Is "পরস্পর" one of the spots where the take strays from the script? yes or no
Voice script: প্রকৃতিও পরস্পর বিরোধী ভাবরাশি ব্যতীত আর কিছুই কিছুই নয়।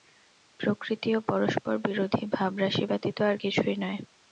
no